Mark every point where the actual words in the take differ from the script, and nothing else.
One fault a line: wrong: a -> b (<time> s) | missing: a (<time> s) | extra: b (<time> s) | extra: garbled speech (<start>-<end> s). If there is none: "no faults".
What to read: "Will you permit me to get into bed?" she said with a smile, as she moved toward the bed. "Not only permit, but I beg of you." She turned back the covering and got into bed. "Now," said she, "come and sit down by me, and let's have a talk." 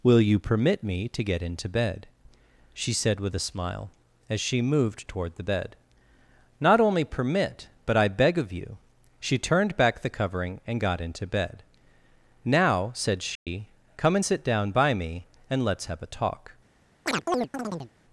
no faults